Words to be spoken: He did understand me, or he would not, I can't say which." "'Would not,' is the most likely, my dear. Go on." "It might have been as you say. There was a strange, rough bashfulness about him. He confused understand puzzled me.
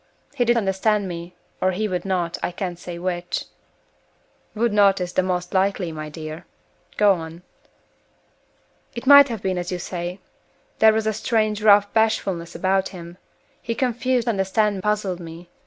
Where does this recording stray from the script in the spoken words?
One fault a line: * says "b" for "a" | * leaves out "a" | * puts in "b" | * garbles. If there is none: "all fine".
all fine